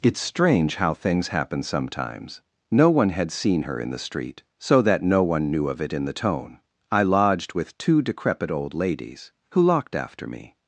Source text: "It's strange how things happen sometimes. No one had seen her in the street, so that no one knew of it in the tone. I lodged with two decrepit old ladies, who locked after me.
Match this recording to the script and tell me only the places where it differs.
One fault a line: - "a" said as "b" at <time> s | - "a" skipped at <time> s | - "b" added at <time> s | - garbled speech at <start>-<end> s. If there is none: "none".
none